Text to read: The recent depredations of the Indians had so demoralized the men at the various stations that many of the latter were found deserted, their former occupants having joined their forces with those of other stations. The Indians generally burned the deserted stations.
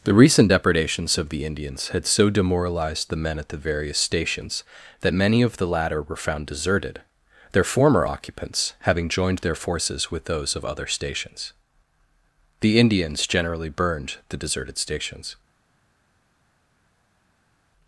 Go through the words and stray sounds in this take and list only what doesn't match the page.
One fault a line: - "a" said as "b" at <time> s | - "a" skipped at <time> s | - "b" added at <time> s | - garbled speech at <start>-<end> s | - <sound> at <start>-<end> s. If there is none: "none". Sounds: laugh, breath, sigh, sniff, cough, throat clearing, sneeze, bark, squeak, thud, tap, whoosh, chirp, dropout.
none